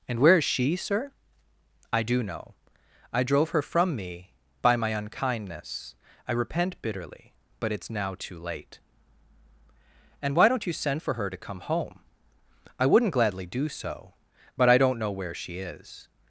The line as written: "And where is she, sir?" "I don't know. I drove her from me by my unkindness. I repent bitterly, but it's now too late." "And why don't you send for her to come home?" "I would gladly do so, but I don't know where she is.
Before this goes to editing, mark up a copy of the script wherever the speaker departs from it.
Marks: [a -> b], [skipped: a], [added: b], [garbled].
"And where is she, sir?" "I [don't -> do] know. I drove her from me by my unkindness. I repent bitterly, but it's now too late." "And why don't you send for her to come home?" "I [would -> wouldn't] gladly do so, but I don't know where she is.